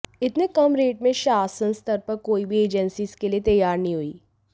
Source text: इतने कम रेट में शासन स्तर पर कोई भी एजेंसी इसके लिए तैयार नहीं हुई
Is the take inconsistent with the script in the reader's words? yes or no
no